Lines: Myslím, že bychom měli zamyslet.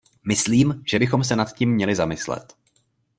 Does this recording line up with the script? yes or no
no